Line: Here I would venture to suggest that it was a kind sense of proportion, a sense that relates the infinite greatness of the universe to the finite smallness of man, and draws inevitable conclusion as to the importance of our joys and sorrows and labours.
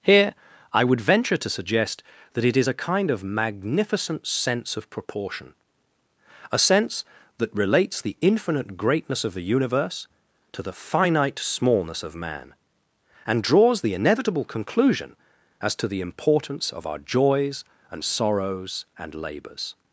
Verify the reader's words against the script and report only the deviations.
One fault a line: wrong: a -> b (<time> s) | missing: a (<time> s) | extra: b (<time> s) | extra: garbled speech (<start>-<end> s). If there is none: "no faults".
wrong: was -> is (2.6 s)
extra: of magnificent (3.1 s)
extra: the (13.8 s)